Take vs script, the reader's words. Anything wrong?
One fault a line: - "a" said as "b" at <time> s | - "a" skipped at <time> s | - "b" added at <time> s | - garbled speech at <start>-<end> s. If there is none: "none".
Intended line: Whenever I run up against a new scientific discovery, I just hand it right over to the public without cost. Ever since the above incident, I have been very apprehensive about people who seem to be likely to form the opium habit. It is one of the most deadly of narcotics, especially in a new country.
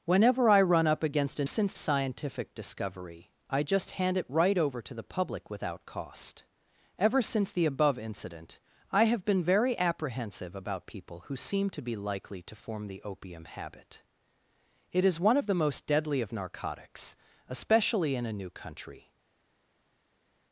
- "new" said as "since" at 1.4 s